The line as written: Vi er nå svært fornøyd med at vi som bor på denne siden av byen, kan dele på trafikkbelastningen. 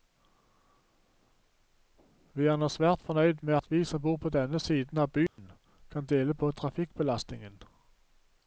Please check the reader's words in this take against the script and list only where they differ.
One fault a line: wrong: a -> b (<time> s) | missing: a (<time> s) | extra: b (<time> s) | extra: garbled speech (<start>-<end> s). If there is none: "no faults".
no faults